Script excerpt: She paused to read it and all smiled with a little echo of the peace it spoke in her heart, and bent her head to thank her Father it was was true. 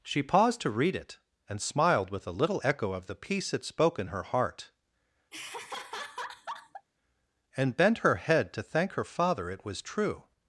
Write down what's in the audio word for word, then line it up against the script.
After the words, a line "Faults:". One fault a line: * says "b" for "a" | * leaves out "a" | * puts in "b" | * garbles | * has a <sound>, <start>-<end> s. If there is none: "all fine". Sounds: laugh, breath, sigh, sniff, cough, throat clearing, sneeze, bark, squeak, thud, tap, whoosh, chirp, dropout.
She paused to read it and smiled with a little echo of the peace it spoke in her heart, and bent her head to thank her Father it was true.
Faults:
* leaves out "all"
* has a laugh, 5.3-6.9 s
* leaves out "was"